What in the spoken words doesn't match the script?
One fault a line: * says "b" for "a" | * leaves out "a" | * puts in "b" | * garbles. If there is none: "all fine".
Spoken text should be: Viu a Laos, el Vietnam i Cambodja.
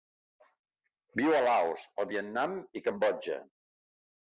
all fine